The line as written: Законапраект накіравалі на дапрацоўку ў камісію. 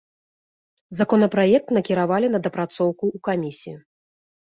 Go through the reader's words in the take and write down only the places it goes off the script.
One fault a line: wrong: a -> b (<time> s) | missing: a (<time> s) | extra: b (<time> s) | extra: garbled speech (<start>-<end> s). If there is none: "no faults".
no faults